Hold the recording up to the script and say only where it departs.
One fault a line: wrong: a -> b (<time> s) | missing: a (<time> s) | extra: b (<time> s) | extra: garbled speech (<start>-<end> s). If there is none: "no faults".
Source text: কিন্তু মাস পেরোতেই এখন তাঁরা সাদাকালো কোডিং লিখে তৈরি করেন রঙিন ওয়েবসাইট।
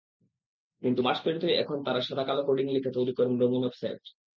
no faults